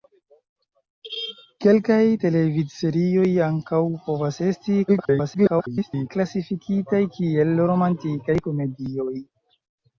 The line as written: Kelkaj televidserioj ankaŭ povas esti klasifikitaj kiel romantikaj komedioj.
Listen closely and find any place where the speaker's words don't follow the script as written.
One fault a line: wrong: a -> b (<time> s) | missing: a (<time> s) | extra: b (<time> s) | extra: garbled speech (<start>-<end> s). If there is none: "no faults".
extra: garbled speech (4.9-6.1 s)